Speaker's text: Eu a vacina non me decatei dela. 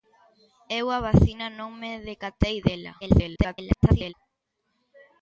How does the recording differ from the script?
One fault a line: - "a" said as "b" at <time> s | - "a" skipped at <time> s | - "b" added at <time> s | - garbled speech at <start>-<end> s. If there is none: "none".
- garbled speech at 3.0-4.1 s